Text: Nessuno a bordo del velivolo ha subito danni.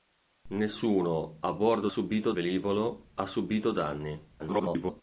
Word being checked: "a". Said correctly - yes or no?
yes